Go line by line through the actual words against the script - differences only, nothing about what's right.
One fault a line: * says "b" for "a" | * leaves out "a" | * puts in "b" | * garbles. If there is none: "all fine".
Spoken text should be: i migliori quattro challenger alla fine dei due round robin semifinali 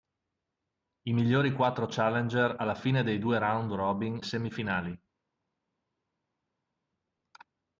all fine